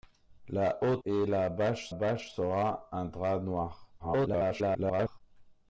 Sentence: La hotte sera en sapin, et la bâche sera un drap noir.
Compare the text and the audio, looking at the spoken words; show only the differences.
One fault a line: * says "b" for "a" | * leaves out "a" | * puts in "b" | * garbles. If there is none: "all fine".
* leaves out "sera en sapin"
* puts in "bâche"
* garbles